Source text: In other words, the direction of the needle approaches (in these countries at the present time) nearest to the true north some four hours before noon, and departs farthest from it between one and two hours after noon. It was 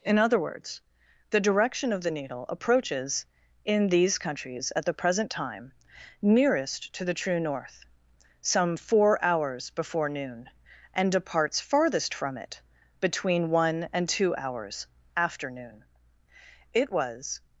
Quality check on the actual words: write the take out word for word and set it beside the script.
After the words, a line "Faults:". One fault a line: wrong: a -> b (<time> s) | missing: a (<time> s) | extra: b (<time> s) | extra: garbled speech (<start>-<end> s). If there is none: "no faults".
In other words, the direction of the needle approaches (in these countries at the present time) nearest to the true north some four hours before noon, and departs farthest from it between one and two hours after noon. It was
Faults:
no faults